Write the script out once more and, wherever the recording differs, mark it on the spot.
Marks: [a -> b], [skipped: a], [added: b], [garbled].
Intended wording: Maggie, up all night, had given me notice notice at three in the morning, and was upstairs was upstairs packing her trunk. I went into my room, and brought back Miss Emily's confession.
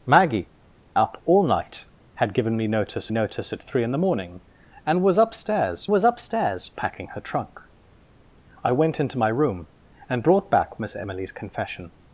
Maggie, up all night, had given me notice notice at three in the morning, and was upstairs was upstairs packing her trunk. I went into my room, and brought back Miss Emily's confession.